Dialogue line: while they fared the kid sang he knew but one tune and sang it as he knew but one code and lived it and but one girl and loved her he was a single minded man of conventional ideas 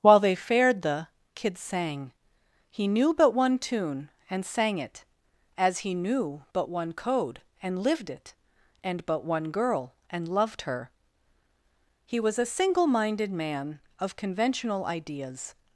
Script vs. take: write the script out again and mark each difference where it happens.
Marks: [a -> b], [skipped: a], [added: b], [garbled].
while they fared the kid sang he knew but one tune and sang it as he knew but one code and lived it and but one girl and loved her he was a single minded man of conventional ideas